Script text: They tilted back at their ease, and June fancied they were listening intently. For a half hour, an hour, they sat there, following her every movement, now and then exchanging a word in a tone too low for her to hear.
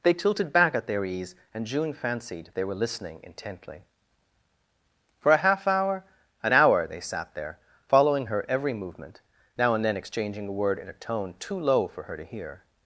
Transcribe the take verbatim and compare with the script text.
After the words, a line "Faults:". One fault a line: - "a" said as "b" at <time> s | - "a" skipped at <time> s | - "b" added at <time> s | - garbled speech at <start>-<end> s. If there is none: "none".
They tilted back at their ease, and June fancied they were listening intently. For a half hour, an hour, they sat there, following her every movement, now and then exchanging a word in a tone too low for her to hear.
Faults:
none